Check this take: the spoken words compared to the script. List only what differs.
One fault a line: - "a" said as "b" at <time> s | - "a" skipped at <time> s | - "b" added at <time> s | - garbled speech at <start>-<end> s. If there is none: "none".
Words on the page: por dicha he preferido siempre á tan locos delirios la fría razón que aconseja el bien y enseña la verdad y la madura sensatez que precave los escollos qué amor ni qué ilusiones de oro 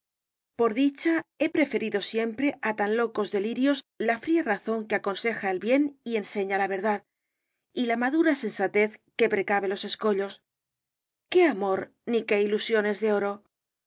none